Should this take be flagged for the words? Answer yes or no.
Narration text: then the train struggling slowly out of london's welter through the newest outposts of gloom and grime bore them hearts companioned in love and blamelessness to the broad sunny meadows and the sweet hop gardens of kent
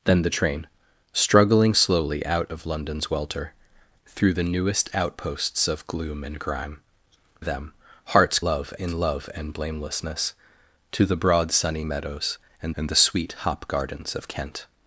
yes